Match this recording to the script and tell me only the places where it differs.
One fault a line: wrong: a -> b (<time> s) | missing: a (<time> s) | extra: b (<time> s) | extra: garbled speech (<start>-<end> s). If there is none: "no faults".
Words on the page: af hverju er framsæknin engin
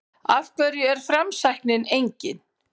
no faults